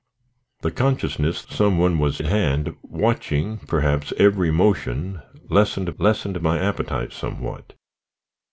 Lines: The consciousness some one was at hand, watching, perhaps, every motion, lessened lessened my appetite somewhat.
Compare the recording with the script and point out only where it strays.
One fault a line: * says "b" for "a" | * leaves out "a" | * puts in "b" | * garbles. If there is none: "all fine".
all fine